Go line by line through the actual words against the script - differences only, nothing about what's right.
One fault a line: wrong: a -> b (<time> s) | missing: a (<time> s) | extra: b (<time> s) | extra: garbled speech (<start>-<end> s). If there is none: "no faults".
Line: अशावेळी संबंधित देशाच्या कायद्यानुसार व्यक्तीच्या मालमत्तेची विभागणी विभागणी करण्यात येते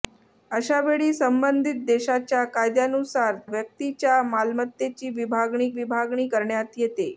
no faults